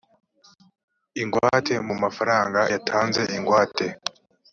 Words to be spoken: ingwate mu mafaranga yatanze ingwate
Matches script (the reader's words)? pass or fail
pass